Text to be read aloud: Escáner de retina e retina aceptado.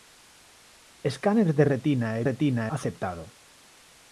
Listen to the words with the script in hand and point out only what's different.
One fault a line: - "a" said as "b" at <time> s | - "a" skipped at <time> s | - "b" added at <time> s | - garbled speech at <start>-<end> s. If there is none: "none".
none